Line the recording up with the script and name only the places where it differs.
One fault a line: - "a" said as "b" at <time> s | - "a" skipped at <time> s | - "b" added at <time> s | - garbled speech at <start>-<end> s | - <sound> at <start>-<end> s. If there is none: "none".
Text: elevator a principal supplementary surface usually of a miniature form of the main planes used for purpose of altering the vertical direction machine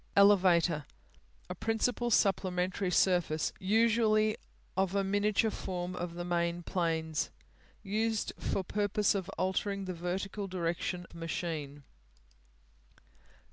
none